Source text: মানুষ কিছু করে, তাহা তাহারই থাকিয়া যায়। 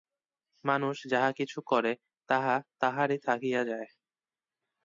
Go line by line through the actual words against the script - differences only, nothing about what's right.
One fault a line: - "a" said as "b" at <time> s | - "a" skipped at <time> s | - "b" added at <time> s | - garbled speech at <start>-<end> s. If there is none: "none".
- "যাহা" added at 1.1 s